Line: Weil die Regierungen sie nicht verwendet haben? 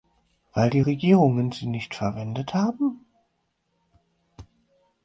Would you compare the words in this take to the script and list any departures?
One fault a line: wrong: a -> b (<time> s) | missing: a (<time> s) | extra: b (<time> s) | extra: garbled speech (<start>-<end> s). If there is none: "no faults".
no faults